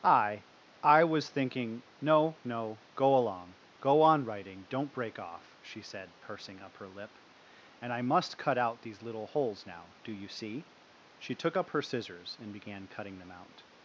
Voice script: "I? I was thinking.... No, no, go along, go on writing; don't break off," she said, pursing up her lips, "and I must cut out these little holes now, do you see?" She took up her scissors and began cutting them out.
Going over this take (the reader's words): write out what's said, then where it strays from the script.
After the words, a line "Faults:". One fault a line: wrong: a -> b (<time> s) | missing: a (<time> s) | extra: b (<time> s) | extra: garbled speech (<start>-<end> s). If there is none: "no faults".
"I? I was thinking.... No, no, go along, go on writing; don't break off," she said, pursing up her lip, "and I must cut out these little holes now, do you see?" She took up her scissors and began cutting them out.
Faults:
wrong: lips -> lip (6.9 s)